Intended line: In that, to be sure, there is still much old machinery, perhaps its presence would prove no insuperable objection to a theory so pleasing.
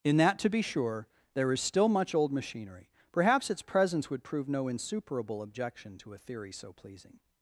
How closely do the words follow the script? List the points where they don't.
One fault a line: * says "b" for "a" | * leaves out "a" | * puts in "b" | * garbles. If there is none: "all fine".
all fine